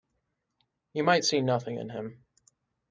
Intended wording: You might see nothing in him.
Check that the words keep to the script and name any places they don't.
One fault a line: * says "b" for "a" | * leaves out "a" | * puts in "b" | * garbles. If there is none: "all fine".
all fine